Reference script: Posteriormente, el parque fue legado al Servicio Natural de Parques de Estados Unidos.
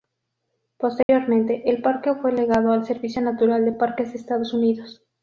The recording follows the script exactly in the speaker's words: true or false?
true